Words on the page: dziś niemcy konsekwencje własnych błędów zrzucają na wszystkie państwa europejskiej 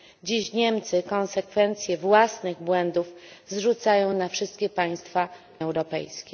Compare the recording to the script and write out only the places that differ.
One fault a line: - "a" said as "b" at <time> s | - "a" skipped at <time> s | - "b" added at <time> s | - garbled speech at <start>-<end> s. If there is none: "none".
none